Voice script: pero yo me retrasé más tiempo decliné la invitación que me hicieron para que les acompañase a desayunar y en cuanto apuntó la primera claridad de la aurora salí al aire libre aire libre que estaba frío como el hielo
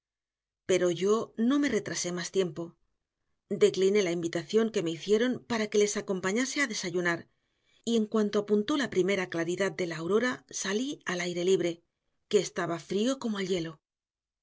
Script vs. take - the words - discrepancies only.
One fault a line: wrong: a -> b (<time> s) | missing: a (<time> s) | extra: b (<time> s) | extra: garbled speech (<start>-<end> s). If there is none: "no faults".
extra: no (1.4 s)
missing: aire libre (11.8 s)